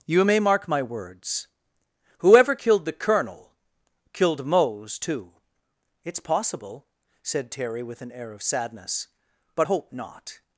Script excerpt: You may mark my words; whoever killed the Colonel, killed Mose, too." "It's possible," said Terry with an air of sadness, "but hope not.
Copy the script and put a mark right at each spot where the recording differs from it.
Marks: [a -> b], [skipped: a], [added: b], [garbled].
You may mark my words; whoever killed the Colonel, killed Mose, too." "It's possible," said Terry with an air of sadness, "but hope not.